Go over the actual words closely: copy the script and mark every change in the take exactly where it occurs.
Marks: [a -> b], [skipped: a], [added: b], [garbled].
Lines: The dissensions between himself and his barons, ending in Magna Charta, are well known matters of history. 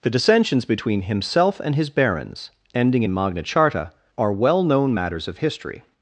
The dissensions between himself and his barons, ending in Magna Charta, are well known matters of history.